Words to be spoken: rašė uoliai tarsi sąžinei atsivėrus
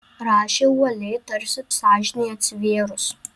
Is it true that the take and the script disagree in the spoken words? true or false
false